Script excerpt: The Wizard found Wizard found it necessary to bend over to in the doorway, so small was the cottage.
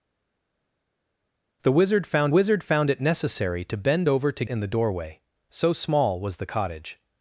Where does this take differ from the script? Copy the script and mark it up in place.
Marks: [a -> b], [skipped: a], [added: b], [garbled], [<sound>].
The Wizard found Wizard found it necessary to bend over to in the doorway, so small was the cottage.